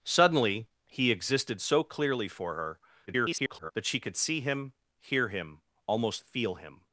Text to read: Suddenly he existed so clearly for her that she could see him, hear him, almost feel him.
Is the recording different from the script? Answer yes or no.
yes